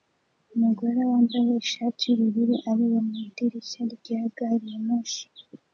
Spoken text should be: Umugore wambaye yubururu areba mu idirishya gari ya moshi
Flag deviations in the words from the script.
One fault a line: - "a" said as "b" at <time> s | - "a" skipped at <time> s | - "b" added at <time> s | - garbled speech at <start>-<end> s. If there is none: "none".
- "ishati" added at 1.6 s
- "rya" added at 4.0 s